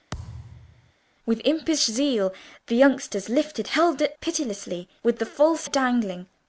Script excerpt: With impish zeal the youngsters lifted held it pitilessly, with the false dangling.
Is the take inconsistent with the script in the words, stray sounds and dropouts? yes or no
yes